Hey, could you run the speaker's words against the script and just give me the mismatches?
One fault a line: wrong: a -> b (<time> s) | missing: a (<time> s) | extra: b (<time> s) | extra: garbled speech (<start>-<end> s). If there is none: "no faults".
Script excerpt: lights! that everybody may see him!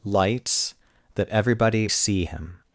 missing: may (1.9 s)